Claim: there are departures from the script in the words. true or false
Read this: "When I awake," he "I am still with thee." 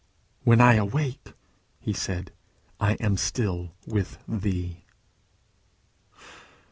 true